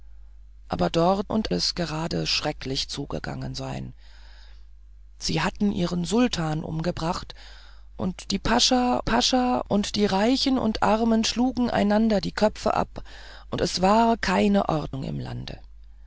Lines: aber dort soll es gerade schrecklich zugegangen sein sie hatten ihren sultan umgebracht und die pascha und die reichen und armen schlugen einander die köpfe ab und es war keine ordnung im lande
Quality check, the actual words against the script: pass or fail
fail